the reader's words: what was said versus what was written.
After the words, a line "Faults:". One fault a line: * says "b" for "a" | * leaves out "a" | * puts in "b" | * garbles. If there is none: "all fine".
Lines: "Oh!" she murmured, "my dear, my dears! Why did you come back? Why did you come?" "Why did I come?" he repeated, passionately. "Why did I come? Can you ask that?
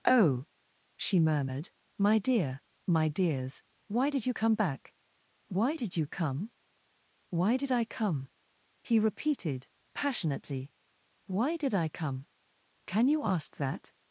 "Oh!" she murmured, "my dear, my dears! Why did you come back? Why did you come?" "Why did I come?" he repeated, passionately. "Why did I come? Can you ask that?
Faults:
all fine